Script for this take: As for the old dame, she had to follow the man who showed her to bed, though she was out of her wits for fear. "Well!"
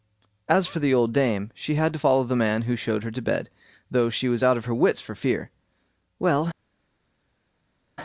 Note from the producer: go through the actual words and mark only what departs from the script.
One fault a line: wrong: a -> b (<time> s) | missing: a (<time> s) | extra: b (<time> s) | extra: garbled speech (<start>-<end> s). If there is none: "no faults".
no faults